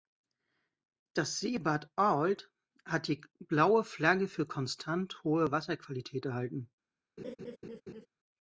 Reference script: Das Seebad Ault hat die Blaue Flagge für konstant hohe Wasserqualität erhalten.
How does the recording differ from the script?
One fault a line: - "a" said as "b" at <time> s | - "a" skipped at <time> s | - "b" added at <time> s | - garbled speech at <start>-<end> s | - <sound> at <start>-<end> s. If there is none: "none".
- laugh at 7.2-8.1 s